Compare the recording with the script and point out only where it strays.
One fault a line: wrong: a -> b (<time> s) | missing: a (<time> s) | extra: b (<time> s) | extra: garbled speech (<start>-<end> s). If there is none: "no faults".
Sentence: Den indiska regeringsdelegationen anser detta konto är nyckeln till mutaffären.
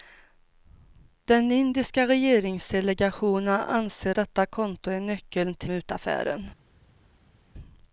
no faults